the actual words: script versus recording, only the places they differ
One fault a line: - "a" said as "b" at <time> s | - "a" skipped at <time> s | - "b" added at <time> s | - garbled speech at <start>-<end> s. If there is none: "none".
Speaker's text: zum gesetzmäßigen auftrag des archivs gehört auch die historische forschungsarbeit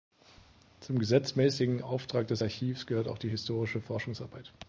none